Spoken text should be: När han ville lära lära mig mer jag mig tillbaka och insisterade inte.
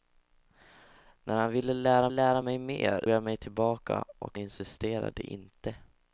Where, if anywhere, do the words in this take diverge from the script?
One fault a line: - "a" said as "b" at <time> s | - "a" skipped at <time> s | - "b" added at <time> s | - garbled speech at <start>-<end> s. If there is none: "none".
none